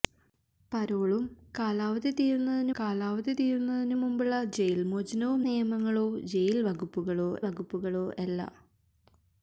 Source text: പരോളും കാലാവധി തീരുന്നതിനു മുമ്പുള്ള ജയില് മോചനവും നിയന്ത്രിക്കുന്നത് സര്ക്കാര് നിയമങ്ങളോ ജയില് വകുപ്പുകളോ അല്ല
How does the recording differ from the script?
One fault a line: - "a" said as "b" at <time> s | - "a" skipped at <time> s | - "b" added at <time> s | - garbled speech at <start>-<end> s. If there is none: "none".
- "കാലാവധി തീരുന്നതിനു" added at 2.8 s
- "നിയന്ത്രിക്കുന്നത് സര്ക്കാര്" skipped at 5.4 s
- "വകുപ്പുകളോ" added at 7.5 s